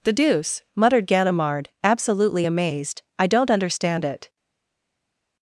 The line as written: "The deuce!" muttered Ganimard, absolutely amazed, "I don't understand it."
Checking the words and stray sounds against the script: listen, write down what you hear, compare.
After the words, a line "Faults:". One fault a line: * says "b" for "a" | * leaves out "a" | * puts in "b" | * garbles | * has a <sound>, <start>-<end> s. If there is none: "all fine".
"The deuce!" muttered Ganimard, absolutely amazed, "I don't understand it."
Faults:
all fine